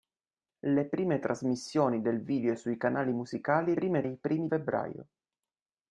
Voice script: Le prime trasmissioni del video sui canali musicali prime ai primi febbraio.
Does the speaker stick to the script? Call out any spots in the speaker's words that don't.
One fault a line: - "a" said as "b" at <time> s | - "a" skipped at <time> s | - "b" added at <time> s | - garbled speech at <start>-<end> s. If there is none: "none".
none